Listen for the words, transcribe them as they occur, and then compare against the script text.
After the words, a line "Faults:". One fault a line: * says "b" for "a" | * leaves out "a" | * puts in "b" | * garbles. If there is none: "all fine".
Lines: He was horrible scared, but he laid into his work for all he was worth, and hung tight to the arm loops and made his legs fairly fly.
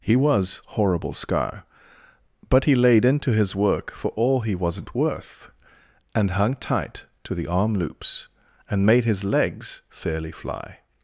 He was horrible scar, but he laid into his work for all he wasn't worth, and hung tight to the arm loops and made his legs fairly fly.
Faults:
* says "scar" for "scared"
* says "wasn't" for "was"